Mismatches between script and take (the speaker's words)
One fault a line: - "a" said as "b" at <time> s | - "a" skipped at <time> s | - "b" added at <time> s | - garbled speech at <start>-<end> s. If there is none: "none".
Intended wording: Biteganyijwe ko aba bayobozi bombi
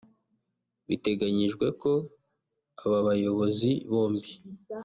none